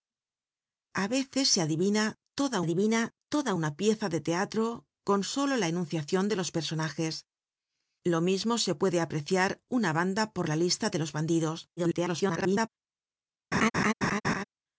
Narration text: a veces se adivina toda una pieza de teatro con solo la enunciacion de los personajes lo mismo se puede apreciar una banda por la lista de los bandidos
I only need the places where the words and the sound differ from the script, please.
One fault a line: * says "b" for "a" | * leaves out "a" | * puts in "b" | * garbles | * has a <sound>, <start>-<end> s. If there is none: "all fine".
* puts in "adivina toda"
* garbles
* has a laugh, 13.5-14.4 s